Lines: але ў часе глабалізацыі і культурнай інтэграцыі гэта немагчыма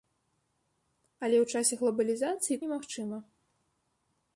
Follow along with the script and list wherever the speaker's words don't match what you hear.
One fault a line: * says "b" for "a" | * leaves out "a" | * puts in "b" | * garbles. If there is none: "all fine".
* leaves out "культурнай інтэграцыі гэта"